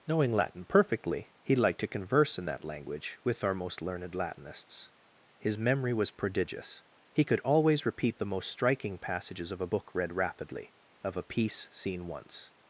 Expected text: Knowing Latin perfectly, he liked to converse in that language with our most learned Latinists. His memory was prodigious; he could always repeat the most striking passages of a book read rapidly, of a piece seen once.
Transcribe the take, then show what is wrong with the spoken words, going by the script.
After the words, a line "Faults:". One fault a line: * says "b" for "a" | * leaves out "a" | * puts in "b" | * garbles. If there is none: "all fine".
Knowing Latin perfectly, he liked to converse in that language with our most learned Latinists. His memory was prodigious; he could always repeat the most striking passages of a book read rapidly, of a piece seen once.
Faults:
all fine